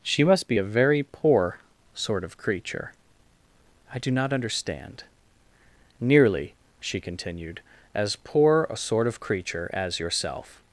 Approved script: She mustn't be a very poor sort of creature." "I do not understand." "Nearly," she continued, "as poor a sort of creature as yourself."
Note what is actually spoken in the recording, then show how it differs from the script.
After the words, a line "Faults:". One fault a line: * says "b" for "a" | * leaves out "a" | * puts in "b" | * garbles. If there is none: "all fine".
She must be a very poor sort of creature." "I do not understand." "Nearly," she continued, "as poor a sort of creature as yourself."
Faults:
* says "must" for "mustn't"